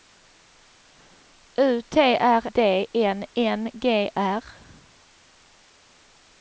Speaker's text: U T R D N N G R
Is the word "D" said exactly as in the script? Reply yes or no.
yes